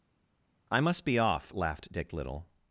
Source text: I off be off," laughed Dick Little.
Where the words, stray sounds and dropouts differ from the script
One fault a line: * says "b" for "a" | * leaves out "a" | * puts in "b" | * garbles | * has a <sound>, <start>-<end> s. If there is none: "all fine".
* says "must" for "off"